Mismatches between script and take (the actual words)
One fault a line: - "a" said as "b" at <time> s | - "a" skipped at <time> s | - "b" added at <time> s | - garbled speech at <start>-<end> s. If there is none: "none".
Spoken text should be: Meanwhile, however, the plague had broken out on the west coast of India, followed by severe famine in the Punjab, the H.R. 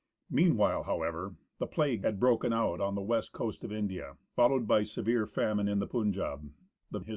none